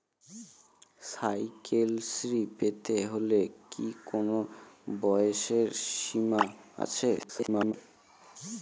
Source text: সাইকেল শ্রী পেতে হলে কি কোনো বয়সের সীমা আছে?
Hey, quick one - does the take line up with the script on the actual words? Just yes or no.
no